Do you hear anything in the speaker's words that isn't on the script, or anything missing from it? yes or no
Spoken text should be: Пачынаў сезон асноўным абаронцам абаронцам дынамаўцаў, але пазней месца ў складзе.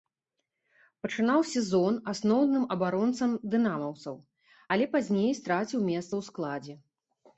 yes